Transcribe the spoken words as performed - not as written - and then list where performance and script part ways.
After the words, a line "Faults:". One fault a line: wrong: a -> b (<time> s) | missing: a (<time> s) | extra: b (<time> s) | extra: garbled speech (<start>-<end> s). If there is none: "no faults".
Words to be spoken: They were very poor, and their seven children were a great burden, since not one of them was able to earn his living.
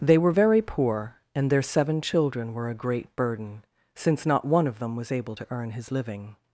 They were very poor, and their seven children were a great burden, since not one of them was able to earn his living.
Faults:
no faults